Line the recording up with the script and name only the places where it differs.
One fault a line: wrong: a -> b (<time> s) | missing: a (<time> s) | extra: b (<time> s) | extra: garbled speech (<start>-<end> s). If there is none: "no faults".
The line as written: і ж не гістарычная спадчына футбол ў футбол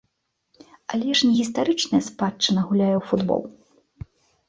wrong: і -> але (0.9 s)
wrong: футбол -> гуляе (2.7 s)